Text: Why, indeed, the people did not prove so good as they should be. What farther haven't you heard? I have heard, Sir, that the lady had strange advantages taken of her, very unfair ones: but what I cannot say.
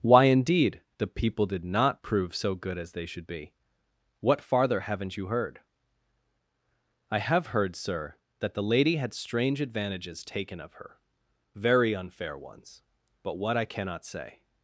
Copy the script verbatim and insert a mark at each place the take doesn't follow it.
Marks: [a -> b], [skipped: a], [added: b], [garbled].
Why, indeed, the people did not prove so good as they should be. What farther haven't you heard? I have heard, Sir, that the lady had strange advantages taken of her, very unfair ones: but what I cannot say.